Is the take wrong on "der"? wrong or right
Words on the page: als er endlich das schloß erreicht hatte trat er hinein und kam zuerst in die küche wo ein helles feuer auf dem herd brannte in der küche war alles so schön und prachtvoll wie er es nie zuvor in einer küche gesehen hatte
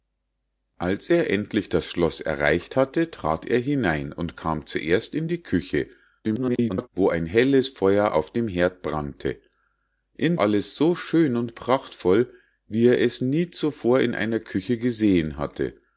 wrong